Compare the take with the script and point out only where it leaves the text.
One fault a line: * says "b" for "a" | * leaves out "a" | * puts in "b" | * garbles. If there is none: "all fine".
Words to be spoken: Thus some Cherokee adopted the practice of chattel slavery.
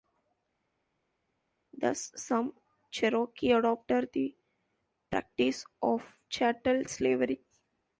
all fine